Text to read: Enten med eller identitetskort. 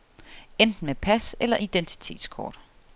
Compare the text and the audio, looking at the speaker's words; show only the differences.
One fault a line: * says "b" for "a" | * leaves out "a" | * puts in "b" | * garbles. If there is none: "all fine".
* puts in "pas"